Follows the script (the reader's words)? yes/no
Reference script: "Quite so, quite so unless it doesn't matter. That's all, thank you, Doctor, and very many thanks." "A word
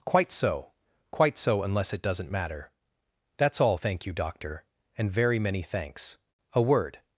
yes